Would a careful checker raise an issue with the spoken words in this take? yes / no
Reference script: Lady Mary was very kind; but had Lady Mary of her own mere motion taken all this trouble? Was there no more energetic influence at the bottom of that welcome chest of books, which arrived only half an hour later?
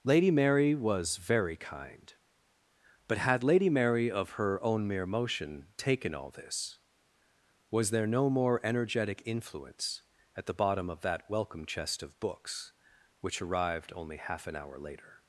yes